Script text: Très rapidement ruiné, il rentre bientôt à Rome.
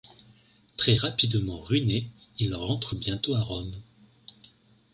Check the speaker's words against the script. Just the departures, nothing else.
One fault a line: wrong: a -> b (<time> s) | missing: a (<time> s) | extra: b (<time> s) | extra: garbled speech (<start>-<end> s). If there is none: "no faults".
no faults